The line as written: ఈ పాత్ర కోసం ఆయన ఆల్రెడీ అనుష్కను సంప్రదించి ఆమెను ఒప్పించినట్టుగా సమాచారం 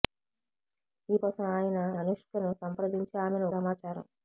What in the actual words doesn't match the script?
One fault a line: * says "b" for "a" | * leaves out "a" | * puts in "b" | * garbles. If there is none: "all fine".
* leaves out "పాత్ర"
* leaves out "ఆల్రెడీ"
* leaves out "ఒప్పించినట్టుగా"